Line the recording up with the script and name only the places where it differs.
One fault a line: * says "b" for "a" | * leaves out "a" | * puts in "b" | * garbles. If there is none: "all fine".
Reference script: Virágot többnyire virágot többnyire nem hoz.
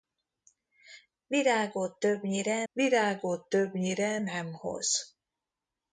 all fine